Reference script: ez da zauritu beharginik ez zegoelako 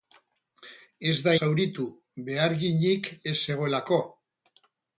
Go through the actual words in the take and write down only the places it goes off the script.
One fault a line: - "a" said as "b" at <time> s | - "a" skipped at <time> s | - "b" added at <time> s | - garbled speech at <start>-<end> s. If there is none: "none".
none